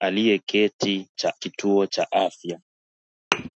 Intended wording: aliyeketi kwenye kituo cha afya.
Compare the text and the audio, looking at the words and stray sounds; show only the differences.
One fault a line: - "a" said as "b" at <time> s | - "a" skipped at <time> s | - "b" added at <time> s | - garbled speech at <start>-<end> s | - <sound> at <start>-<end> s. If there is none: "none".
- "kwenye" said as "cha" at 1.1 s
- thud at 3.3-3.5 s